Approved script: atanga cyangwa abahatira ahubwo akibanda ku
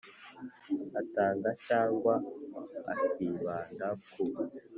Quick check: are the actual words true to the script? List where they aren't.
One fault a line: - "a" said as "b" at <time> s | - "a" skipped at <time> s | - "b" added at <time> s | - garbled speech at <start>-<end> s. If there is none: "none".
- "abahatira ahubwo" skipped at 2.1 s